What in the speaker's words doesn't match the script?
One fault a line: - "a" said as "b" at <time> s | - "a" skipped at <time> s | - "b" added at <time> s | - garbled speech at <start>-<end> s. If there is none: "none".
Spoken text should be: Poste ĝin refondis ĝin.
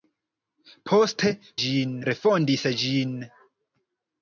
none